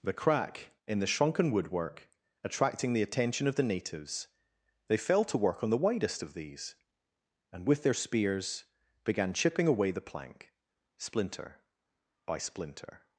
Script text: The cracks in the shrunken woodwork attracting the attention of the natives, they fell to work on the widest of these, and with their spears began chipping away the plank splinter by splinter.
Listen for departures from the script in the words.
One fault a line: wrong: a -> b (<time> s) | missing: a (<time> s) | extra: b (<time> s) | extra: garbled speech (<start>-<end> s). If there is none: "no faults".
wrong: cracks -> crack (0.1 s)